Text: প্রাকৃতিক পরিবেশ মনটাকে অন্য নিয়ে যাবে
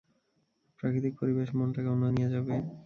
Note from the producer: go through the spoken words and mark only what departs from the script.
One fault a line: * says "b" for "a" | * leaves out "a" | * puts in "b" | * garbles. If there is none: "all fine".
all fine